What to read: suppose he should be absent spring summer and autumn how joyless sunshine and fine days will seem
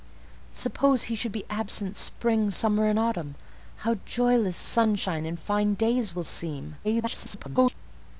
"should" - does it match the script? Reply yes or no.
yes